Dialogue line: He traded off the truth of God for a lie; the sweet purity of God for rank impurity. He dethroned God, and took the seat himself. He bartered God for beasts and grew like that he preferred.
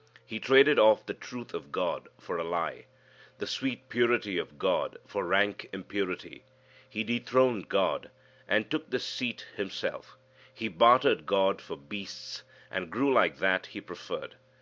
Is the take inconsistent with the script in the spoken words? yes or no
no